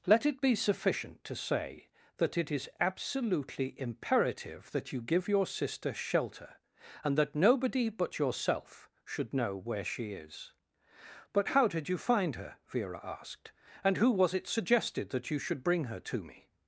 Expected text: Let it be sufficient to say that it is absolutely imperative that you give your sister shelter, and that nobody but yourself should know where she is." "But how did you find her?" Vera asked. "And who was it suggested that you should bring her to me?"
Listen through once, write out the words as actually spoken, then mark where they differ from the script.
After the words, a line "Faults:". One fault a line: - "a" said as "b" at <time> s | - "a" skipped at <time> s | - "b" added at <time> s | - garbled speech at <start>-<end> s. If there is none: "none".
Let it be sufficient to say that it is absolutely imperative that you give your sister shelter, and that nobody but yourself should know where she is." "But how did you find her?" Vera asked. "And who was it suggested that you should bring her to me?"
Faults:
none